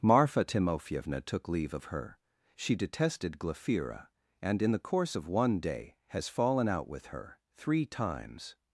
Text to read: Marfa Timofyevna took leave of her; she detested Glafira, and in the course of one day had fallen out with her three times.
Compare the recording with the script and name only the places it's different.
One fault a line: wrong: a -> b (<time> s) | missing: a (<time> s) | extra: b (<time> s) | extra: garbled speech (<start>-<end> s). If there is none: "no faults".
wrong: had -> has (6.1 s)